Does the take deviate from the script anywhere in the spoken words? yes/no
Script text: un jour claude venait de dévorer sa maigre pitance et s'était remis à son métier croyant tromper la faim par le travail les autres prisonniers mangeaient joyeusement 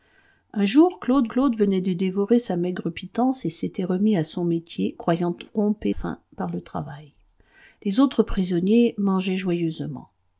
yes